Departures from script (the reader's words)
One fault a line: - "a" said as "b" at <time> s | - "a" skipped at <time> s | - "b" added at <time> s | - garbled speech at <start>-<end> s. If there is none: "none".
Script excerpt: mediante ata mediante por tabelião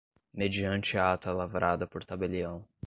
- "mediante" said as "lavrada" at 1.3 s